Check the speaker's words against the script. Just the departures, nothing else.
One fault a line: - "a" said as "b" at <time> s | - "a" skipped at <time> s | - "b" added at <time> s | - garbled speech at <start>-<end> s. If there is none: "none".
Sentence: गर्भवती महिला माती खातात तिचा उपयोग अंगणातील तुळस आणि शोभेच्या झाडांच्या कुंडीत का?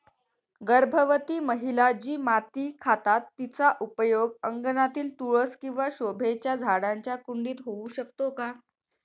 - "जी" added at 1.9 s
- "आणि" said as "किंवा" at 5.6 s
- "होऊ शकतो" added at 7.7 s